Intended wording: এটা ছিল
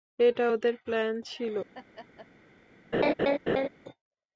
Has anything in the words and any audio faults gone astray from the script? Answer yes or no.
yes